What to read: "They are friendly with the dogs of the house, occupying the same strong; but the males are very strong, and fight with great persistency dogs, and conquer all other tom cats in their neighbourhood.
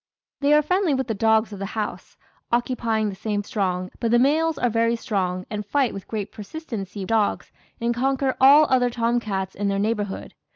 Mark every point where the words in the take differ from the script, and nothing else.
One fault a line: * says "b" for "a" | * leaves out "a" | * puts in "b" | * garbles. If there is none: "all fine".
all fine